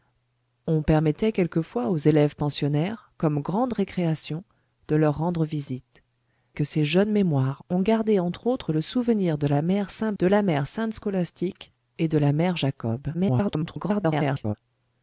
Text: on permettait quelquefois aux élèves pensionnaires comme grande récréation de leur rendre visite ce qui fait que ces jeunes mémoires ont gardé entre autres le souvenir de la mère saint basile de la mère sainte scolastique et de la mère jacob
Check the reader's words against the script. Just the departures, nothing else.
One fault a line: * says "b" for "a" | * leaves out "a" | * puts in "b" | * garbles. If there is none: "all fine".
* leaves out "ce qui fait"
* leaves out "basile"
* garbles